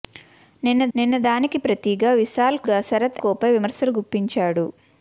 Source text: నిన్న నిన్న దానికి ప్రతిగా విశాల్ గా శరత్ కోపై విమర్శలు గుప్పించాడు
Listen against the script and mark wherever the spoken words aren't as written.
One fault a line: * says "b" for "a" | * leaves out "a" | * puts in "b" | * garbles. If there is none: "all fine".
all fine